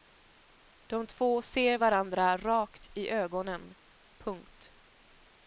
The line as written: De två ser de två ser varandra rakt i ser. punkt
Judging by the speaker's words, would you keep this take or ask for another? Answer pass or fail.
fail